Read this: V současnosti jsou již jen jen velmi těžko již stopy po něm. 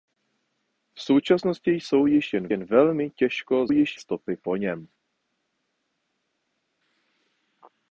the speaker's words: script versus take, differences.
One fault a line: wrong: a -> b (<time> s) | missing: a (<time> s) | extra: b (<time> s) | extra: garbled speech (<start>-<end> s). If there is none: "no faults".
no faults